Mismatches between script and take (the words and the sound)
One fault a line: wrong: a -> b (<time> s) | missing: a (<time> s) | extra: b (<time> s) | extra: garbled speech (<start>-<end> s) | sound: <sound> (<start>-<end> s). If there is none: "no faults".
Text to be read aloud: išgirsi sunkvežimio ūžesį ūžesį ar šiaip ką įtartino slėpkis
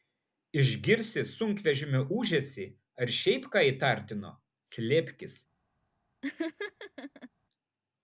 missing: ūžesį (2.7 s)
sound: laugh (6.2-7.3 s)